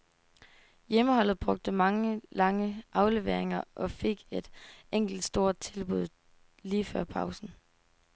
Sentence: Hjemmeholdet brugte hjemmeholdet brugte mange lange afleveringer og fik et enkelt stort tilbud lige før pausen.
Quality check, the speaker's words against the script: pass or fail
fail